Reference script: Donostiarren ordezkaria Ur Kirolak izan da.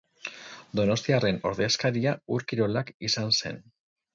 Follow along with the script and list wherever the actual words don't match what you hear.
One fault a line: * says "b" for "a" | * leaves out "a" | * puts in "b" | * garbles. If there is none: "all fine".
* says "zen" for "da"